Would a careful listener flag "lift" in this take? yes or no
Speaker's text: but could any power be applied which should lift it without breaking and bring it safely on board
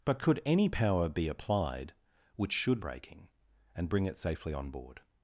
yes